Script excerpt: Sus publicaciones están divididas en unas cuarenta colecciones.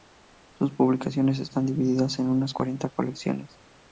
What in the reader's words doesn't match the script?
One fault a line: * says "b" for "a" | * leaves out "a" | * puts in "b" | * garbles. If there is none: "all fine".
all fine